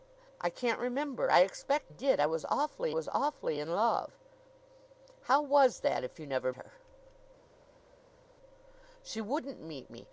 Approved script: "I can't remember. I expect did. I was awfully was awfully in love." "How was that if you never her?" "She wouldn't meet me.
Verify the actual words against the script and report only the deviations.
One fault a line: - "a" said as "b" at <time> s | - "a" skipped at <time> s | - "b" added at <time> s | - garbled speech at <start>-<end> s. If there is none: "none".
none